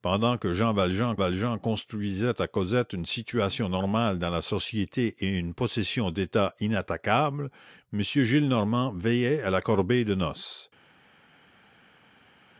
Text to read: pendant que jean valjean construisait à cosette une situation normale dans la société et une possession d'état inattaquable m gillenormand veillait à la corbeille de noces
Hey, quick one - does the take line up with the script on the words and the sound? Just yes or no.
no